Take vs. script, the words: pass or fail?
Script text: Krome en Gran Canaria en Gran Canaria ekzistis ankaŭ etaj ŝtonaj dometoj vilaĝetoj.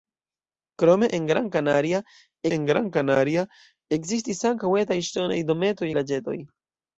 pass